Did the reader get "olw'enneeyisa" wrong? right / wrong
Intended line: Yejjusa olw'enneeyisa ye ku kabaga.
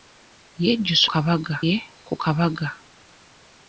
wrong